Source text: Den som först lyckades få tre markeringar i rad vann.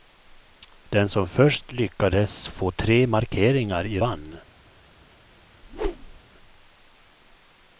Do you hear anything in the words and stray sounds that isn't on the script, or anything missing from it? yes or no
yes